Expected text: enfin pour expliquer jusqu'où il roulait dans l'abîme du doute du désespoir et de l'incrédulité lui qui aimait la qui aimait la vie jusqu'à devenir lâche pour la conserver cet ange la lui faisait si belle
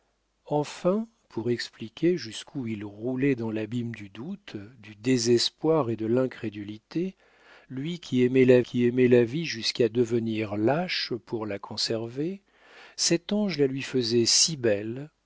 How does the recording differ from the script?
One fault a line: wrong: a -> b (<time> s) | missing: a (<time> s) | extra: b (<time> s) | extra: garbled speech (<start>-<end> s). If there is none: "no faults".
no faults